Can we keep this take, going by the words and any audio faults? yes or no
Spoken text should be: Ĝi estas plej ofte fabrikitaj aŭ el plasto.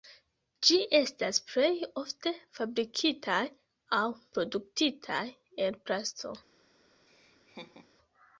no